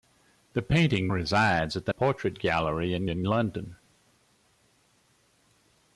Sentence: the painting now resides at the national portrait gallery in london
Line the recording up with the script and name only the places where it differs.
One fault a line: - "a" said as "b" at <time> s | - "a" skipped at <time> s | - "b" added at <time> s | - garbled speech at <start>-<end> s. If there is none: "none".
- "now" skipped at 1.1 s
- "national" skipped at 1.9 s
- "in" added at 3.1 s